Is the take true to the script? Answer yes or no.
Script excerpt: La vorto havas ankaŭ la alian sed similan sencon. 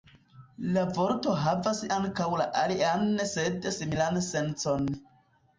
yes